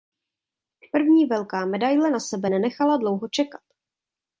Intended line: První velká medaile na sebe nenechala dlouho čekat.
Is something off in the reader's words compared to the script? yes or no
no